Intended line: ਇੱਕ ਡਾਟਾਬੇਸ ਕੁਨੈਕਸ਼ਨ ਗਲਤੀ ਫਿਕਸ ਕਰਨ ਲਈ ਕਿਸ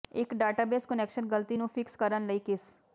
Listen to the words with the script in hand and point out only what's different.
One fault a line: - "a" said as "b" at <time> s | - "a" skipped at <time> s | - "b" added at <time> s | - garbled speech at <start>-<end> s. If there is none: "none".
- "ਨੂੰ" added at 1.6 s